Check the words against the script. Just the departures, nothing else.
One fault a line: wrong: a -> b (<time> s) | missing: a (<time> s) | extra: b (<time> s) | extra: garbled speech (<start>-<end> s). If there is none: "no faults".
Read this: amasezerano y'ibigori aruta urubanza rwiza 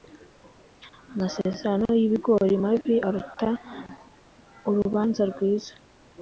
extra: mabi (2.6 s)